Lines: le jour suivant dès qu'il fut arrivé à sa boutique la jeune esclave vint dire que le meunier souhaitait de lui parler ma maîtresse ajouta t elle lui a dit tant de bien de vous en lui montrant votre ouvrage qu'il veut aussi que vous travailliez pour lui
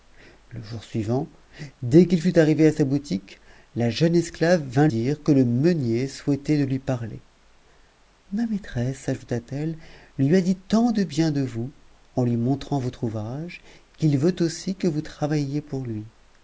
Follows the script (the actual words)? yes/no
yes